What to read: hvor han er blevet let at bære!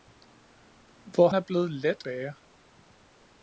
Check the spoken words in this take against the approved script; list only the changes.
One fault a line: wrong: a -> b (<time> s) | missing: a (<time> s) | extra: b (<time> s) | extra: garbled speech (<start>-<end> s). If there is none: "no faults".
missing: han (1.3 s)
missing: at (2.0 s)